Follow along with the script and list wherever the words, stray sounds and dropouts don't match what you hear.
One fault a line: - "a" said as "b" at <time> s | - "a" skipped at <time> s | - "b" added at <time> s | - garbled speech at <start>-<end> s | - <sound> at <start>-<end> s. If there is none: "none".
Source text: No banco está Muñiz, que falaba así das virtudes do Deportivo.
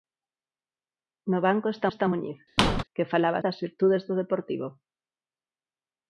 - "está" added at 1.9 s
- squeak at 2.6-2.8 s
- "así" skipped at 3.4 s